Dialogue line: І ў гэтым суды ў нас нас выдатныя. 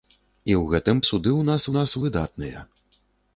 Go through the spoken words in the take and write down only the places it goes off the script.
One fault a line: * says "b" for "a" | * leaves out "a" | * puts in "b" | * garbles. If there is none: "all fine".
all fine